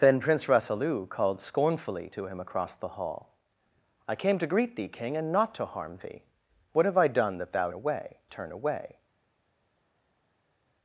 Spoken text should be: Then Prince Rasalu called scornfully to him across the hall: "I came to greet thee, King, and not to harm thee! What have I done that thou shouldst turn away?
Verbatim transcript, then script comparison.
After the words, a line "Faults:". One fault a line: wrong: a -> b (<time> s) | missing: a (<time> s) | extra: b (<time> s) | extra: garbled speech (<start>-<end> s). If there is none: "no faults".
Then Prince Rasalu called scornfully to him across the hall: "I came to greet thee, King, and not to harm thee! What have I done that thou away turn away?
Faults:
wrong: shouldst -> away (7.7 s)